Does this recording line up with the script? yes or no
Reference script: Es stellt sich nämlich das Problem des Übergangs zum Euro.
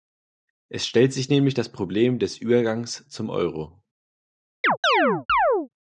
yes